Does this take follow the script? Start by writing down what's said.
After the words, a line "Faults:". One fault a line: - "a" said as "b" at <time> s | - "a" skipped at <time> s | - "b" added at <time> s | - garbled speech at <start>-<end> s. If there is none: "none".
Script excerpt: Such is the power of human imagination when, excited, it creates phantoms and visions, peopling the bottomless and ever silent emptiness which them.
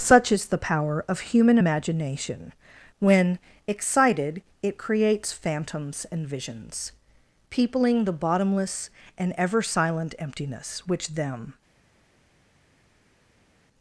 Such is the power of human imagination when, excited, it creates phantoms and visions, peopling the bottomless and ever silent emptiness which them.
Faults:
none